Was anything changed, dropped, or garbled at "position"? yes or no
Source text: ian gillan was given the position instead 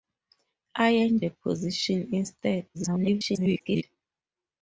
no